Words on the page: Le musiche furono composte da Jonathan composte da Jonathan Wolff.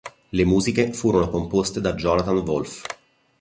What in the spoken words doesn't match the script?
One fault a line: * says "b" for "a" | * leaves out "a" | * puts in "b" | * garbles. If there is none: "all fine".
* leaves out "composte da Jonathan"